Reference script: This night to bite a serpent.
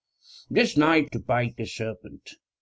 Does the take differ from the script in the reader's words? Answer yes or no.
no